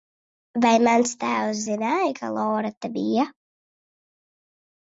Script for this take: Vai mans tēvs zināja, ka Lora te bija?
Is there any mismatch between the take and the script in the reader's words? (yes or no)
no